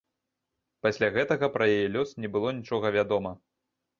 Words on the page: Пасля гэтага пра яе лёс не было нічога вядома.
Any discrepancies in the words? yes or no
no